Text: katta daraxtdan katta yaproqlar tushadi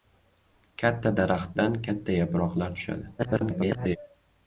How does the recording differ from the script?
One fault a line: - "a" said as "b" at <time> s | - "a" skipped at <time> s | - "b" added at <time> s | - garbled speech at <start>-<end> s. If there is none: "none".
- garbled speech at 3.2-4.0 s